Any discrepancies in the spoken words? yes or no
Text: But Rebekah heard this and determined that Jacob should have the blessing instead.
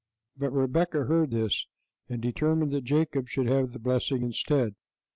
no